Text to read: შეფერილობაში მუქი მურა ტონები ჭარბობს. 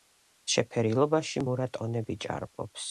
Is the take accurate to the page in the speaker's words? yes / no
no